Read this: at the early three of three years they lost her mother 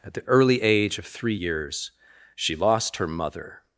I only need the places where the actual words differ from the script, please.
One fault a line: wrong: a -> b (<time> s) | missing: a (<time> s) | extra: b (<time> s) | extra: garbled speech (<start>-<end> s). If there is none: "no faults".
wrong: three -> age (0.6 s)
wrong: they -> she (2.3 s)